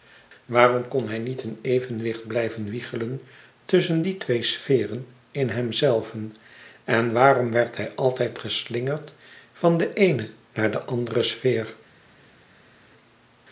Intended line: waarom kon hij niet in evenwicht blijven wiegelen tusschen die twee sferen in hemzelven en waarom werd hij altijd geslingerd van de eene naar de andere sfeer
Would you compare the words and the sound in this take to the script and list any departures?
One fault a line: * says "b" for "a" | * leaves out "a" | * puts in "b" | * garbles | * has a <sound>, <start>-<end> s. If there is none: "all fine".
all fine